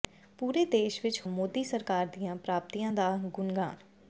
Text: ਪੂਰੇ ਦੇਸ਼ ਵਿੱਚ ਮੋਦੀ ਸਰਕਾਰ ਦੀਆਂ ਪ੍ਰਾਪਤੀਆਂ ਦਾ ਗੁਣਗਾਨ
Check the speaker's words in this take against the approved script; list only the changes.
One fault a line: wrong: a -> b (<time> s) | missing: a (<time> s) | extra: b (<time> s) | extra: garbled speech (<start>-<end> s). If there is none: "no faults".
no faults